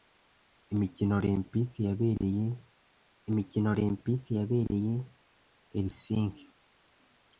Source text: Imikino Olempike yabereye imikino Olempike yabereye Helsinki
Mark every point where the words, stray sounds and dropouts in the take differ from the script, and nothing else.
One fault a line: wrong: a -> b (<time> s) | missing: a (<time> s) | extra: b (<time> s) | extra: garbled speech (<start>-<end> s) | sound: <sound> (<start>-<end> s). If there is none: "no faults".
no faults